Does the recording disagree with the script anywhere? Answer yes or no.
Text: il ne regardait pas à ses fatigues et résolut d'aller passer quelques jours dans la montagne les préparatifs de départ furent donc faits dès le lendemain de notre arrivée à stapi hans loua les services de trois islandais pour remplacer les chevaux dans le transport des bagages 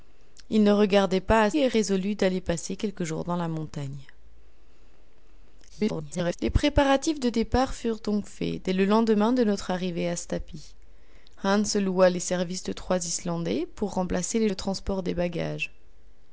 yes